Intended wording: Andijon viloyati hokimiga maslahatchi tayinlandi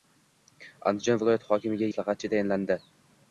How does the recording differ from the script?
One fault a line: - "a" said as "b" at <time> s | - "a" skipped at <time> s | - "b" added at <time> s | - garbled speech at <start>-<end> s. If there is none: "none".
none